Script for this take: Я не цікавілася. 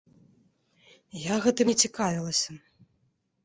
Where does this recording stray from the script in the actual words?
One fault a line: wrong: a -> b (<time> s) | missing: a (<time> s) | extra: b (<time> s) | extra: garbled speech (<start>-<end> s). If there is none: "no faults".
extra: гэтым (1.4 s)